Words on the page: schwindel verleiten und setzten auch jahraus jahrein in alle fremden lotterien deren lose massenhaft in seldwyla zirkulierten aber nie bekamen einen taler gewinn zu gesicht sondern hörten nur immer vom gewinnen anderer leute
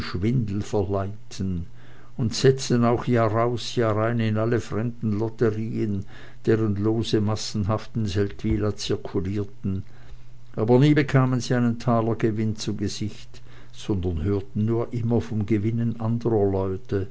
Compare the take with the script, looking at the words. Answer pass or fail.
fail